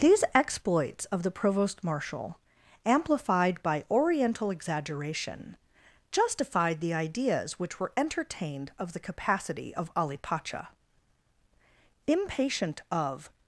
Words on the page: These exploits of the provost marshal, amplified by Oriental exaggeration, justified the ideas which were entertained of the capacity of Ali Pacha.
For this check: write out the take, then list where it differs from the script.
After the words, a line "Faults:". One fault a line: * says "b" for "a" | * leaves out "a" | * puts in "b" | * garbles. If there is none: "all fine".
These exploits of the provost marshal, amplified by Oriental exaggeration, justified the ideas which were entertained of the capacity of Ali Pacha. Impatient of
Faults:
* puts in "Impatient of"